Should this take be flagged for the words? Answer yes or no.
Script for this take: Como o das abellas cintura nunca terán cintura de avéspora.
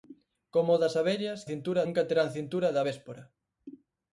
no